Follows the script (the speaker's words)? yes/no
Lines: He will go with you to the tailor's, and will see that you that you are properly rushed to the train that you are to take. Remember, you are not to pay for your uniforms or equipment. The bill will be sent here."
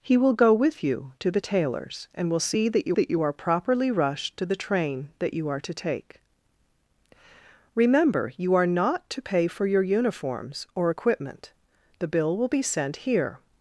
yes